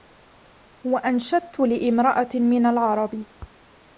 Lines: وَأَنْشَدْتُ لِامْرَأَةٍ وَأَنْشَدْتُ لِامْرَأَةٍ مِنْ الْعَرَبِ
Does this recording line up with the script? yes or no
no